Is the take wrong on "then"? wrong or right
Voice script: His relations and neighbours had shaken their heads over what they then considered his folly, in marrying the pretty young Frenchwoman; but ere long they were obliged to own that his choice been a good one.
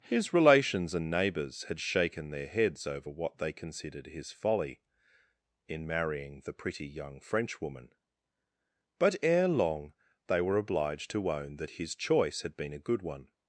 wrong